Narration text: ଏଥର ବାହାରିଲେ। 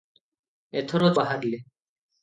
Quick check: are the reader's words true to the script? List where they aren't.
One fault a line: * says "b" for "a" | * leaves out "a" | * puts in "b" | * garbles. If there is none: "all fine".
all fine